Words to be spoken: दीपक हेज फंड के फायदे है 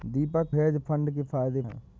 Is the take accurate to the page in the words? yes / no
yes